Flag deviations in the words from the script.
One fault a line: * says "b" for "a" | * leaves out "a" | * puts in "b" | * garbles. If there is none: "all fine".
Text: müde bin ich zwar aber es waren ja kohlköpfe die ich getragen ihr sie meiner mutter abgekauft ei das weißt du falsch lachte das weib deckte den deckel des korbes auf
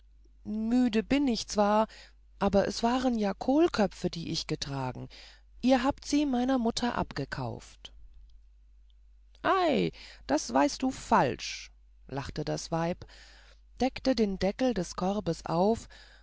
* puts in "habt"